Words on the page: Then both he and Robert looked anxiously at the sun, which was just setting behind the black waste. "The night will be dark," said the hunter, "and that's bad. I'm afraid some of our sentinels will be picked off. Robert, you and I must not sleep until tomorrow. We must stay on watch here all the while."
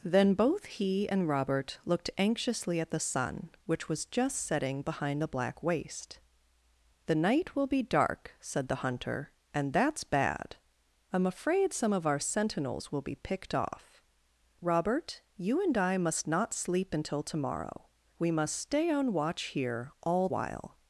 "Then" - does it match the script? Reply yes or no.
yes